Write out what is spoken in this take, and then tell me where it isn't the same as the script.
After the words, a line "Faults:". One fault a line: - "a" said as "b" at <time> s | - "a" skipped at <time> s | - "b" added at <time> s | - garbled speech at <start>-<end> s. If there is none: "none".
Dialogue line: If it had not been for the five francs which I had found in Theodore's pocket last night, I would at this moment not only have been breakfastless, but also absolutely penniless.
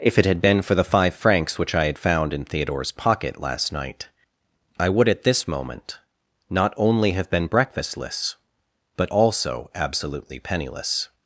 If it had been for the five francs which I had found in Theodore's pocket last night, I would at this moment not only have been breakfastless, but also absolutely penniless.
Faults:
- "not" skipped at 0.4 s